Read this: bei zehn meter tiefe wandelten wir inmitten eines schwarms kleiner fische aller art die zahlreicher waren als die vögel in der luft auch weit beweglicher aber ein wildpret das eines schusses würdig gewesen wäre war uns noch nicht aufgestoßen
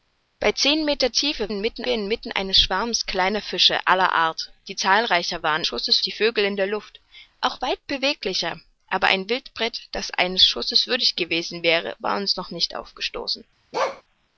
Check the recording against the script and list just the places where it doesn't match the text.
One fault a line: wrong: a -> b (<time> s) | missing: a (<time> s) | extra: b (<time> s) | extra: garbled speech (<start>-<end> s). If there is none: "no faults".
wrong: wandelten -> inmitten (1.5 s)
wrong: als -> schusses (5.6 s)